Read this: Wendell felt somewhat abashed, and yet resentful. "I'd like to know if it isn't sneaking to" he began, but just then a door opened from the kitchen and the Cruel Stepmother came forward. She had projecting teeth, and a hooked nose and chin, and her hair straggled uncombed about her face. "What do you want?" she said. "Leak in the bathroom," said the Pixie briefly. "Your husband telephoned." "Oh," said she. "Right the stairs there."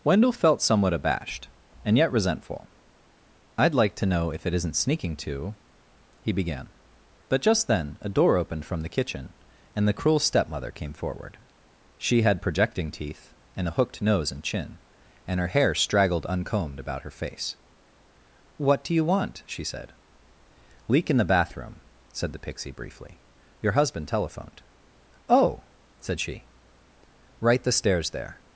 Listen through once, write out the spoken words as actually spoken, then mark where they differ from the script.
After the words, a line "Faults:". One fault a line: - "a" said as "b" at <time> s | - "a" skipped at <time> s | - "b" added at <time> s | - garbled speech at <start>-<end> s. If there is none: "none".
Wendell felt somewhat abashed, and yet resentful. "I'd like to know if it isn't sneaking to" he began, but just then a door opened from the kitchen and the Cruel Stepmother came forward. She had projecting teeth, and a hooked nose and chin, and her hair straggled uncombed about her face. "What do you want?" she said. "Leak in the bathroom," said the Pixie briefly. "Your husband telephoned." "Oh," said she. "Right the stairs there."
Faults:
none